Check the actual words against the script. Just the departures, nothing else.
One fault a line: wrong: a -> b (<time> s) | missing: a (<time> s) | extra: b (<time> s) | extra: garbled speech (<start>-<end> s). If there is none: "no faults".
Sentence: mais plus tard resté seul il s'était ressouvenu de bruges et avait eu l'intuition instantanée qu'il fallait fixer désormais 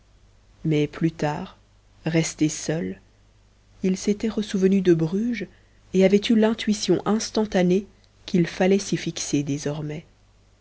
extra: s'y (8.8 s)